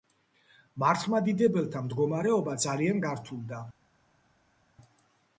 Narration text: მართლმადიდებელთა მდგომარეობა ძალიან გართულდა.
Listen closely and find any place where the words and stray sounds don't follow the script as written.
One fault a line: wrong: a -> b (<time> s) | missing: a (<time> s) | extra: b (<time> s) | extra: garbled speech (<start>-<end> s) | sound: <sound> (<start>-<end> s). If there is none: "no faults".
no faults